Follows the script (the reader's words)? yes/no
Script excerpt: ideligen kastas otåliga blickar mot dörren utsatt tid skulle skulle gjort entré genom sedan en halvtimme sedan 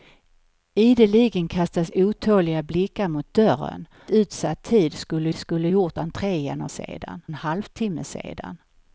yes